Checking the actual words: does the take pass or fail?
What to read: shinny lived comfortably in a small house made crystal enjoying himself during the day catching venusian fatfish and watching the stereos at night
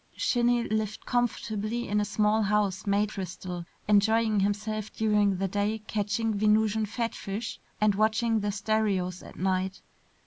pass